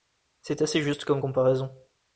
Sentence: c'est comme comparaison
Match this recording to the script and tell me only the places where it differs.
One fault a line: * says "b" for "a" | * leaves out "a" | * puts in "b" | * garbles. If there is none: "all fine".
* puts in "assez juste"